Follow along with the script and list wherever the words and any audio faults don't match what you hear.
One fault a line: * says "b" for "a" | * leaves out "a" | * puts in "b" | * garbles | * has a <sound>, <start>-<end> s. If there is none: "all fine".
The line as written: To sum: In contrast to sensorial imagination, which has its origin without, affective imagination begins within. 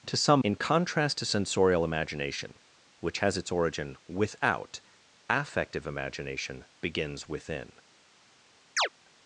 * has a chirp, 8.8-8.9 s